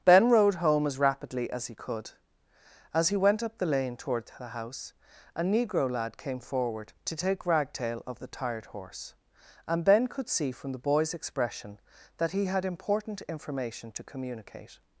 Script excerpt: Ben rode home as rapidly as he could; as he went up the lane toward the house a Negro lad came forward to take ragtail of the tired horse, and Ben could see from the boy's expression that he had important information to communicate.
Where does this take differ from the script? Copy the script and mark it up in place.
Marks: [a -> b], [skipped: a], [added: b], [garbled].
Ben rode home as rapidly as he could; as he went up the lane toward the house a Negro lad came forward to take ragtail of the tired horse, and Ben could see from the boy's expression that he had important information to communicate.